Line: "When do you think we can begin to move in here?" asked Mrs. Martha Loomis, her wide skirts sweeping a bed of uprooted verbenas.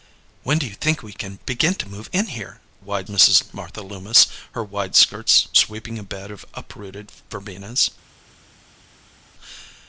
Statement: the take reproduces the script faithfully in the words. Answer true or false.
false